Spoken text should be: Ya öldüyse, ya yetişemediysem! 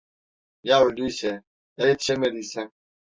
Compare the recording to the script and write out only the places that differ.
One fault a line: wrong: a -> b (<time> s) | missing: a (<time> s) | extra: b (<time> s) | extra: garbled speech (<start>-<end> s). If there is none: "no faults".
no faults